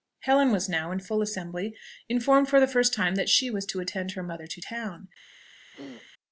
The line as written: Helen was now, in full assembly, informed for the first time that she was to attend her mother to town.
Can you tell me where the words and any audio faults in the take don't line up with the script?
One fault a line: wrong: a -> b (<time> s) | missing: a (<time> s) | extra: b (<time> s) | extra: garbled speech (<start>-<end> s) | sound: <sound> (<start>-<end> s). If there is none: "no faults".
sound: throat clearing (5.7-6.1 s)